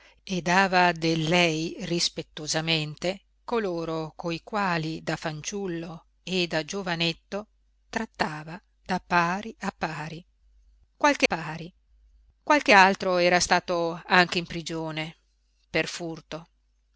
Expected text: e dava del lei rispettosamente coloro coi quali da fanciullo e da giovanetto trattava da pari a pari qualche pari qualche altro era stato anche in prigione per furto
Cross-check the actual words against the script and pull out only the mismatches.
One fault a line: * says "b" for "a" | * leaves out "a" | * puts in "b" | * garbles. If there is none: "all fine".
all fine